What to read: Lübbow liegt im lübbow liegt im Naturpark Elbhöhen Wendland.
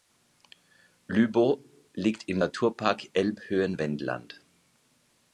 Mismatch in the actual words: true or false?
true